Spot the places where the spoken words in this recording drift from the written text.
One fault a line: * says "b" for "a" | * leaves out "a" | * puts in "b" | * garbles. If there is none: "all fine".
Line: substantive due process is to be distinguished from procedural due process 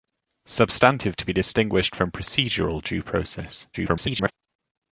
* leaves out "due process is"
* garbles